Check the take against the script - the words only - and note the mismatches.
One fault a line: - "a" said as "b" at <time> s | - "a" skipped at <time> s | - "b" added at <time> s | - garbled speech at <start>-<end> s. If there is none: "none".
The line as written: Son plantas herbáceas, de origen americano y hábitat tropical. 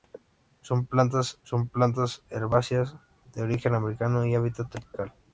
- "son plantas" added at 1.4 s